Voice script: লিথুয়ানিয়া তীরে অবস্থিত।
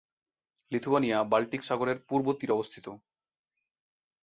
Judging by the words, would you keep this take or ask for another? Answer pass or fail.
fail